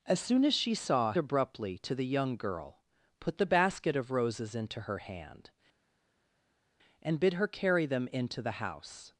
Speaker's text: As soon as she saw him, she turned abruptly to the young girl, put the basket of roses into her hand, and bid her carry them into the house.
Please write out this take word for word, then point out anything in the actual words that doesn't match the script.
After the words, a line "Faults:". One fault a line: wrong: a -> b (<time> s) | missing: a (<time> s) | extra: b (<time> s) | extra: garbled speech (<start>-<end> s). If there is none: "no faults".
As soon as she saw abruptly to the young girl, put the basket of roses into her hand, and bid her carry them into the house.
Faults:
missing: him she turned (1.1 s)